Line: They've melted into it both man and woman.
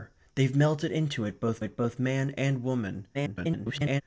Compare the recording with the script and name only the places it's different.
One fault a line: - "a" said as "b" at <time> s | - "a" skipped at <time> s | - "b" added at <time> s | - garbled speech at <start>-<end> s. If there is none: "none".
- "it both" added at 1.6 s
- garbled speech at 3.1-4.0 s